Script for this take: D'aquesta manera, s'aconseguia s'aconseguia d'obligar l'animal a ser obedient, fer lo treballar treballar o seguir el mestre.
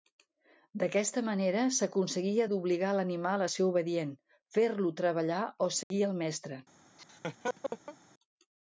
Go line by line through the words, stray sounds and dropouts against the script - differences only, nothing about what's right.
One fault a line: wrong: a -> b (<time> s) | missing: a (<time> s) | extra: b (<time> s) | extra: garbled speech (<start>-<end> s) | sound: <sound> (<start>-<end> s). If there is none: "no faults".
missing: s'aconseguia (2.5 s)
missing: treballar (5.4 s)
sound: dropout (5.8-5.9 s)
sound: laugh (7.0-8.0 s)